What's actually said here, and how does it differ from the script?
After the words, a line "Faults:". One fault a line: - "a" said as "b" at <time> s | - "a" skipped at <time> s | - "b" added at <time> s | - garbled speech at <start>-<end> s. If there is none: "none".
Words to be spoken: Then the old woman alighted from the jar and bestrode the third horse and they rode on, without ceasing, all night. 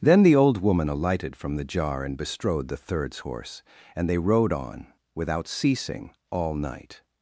Then the old woman alighted from the jar and bestrode the thirds horse and they rode on, without ceasing, all night.
Faults:
- "third" said as "thirds" at 2.8 s